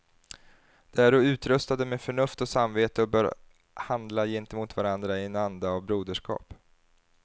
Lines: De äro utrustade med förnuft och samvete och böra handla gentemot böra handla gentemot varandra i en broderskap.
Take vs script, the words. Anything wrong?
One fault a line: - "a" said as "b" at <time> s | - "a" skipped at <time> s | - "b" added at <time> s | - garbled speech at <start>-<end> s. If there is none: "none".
- "böra handla gentemot" skipped at 4.8 s
- "anda av" added at 5.3 s